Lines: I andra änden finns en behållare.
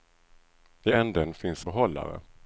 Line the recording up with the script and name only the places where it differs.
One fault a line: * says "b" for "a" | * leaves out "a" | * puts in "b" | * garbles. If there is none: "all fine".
* leaves out "andra"
* leaves out "en"